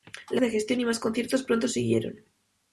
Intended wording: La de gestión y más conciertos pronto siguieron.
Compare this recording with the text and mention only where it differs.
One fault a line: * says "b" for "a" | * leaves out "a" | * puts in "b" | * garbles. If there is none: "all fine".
all fine